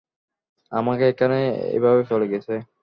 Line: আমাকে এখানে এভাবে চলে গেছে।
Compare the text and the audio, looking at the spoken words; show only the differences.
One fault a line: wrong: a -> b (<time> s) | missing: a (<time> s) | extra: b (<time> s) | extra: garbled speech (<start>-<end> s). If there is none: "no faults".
no faults